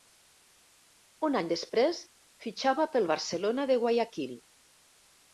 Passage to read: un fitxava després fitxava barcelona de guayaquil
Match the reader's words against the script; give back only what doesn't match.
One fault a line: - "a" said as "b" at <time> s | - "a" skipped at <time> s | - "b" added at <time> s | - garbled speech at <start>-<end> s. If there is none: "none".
- "fitxava" said as "any" at 1.4 s
- "pel" added at 3.0 s